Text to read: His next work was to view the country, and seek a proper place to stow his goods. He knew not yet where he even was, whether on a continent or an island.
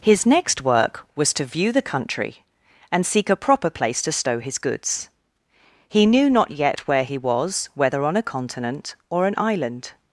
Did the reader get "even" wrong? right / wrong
wrong